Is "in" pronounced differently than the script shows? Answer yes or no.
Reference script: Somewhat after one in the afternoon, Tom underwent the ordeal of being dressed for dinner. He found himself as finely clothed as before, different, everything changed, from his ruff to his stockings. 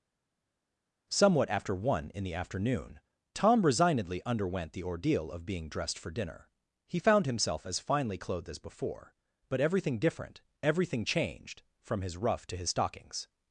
no